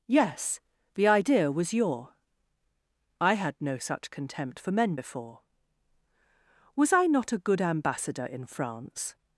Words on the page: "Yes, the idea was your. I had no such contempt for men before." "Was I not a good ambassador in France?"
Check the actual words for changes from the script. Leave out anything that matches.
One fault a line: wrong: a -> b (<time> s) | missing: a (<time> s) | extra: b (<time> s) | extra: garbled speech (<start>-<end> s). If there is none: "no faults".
no faults